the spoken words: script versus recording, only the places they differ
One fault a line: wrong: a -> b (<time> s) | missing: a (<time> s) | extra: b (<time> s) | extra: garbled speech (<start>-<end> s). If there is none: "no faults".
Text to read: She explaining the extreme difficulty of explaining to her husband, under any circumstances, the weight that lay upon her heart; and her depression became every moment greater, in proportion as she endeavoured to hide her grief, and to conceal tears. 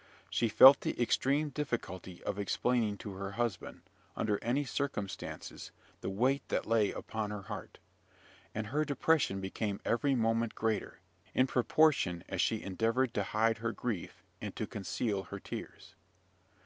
wrong: explaining -> felt (0.5 s)
extra: her (15.2 s)